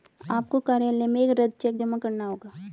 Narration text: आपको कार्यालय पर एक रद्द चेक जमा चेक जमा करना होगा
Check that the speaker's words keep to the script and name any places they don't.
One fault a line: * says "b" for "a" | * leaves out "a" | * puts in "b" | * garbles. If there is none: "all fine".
* says "में" for "पर"
* leaves out "चेक जमा"